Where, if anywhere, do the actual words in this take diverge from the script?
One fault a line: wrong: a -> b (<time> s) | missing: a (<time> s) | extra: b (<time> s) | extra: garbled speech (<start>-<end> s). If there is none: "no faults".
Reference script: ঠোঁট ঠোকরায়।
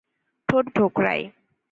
no faults